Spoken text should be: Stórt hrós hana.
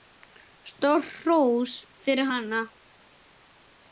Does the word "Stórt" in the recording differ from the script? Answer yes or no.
no